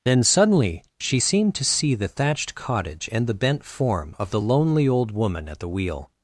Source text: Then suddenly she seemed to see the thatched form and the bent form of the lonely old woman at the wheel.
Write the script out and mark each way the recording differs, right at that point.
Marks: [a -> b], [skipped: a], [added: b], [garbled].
Then suddenly she seemed to see the thatched [form -> cottage] and the bent form of the lonely old woman at the wheel.